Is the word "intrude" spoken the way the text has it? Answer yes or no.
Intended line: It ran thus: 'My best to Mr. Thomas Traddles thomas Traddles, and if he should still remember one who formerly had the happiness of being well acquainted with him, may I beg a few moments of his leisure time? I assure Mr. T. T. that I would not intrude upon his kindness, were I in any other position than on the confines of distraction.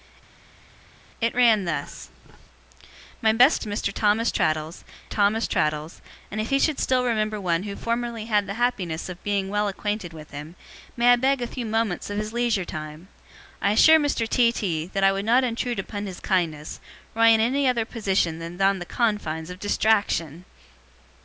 yes